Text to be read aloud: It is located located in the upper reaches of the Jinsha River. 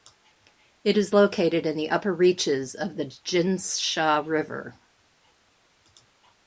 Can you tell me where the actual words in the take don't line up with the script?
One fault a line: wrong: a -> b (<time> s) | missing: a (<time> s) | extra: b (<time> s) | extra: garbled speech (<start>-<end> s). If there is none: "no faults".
missing: located (1.7 s)